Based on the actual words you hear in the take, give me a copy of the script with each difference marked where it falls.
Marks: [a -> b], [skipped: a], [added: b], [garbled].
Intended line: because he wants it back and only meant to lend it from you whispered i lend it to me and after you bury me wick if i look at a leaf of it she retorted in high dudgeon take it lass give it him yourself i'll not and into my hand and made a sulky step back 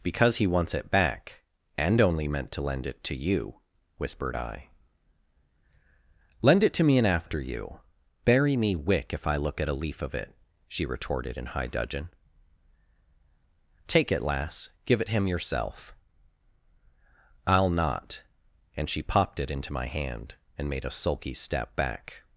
because he wants it back and only meant to lend it [from -> to] you whispered i lend it to me and after you bury me wick if i look at a leaf of it she retorted in high dudgeon take it lass give it him yourself i'll not and [added: she popped it] into my hand and made a sulky step back